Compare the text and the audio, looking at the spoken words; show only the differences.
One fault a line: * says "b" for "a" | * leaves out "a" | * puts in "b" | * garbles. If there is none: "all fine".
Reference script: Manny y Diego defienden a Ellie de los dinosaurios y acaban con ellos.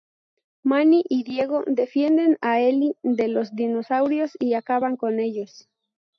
all fine